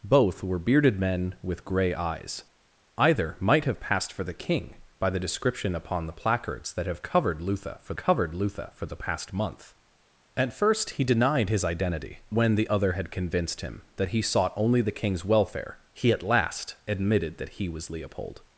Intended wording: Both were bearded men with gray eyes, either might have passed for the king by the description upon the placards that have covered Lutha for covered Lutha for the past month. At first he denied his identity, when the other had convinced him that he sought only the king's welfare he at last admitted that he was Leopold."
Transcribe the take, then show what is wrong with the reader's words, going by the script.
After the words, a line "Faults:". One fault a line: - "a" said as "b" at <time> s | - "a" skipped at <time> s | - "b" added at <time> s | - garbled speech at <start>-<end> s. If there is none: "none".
Both were bearded men with gray eyes, either might have passed for the king by the description upon the placards that have covered Lutha for covered Lutha for the past month. At first he denied his identity, when the other had convinced him that he sought only the king's welfare he at last admitted that he was Leopold."
Faults:
none